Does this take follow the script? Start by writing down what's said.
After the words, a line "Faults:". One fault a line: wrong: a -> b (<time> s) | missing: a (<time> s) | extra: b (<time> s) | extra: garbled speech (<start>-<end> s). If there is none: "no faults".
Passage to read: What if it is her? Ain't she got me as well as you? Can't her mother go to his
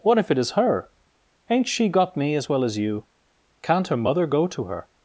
What if it is her? Ain't she got me as well as you? Can't her mother go to her
Faults:
wrong: his -> her (4.6 s)